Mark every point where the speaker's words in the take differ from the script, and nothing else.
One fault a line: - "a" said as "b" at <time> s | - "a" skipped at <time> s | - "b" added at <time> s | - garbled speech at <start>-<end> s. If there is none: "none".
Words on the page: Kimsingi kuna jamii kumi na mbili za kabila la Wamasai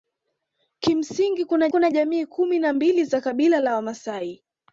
- "kuna" added at 1.7 s